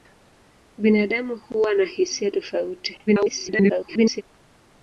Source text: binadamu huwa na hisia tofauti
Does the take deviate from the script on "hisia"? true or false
false